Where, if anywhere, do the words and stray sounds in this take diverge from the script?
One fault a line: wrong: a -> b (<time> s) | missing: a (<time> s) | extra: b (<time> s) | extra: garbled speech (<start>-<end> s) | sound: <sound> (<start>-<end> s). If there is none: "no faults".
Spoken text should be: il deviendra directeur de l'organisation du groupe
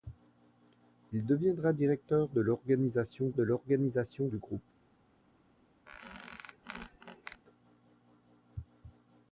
extra: de l'organisation (3.3 s)
sound: squeak (5.9-7.4 s)